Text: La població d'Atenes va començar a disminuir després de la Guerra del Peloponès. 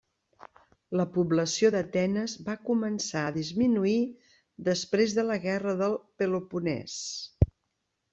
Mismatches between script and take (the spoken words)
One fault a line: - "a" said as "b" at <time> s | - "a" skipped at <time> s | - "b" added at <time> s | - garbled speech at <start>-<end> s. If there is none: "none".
none